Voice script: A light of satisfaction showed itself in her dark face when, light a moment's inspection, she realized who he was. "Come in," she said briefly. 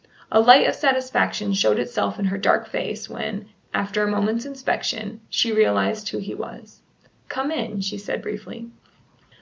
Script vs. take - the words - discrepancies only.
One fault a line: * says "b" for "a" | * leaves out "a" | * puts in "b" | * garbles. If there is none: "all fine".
* says "after" for "light"